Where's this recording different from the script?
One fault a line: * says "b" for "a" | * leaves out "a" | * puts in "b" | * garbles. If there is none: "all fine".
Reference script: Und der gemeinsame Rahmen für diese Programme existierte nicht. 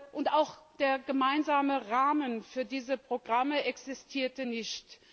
* puts in "auch"